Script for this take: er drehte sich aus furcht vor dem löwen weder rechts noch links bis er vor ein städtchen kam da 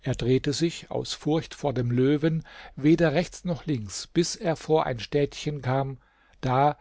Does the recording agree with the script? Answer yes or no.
yes